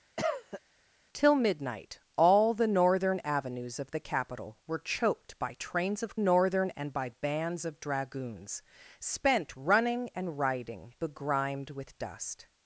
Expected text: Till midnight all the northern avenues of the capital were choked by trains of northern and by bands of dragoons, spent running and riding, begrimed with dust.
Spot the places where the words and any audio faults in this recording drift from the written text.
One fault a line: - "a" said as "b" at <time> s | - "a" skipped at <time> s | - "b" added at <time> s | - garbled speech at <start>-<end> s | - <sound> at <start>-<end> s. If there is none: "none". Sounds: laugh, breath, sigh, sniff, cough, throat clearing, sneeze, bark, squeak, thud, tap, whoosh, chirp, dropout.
- cough at 0.2-0.6 s